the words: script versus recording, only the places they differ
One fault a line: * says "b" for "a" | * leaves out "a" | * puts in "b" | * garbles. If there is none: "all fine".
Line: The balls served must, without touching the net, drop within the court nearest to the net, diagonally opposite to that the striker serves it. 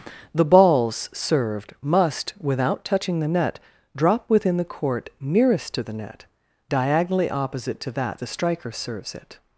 all fine